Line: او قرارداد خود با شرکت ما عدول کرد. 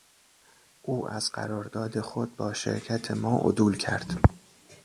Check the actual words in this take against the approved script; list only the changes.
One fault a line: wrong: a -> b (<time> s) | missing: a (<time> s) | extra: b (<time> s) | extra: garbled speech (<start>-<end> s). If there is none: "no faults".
extra: از (1.1 s)